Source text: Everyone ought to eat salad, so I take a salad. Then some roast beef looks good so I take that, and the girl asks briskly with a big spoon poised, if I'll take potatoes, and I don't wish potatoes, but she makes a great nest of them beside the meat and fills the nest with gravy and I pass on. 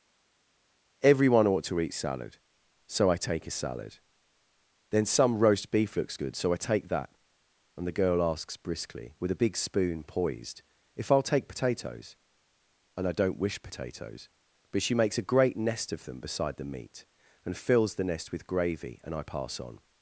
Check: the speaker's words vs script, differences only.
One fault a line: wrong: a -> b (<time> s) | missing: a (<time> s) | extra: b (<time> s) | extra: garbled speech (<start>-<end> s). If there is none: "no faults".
no faults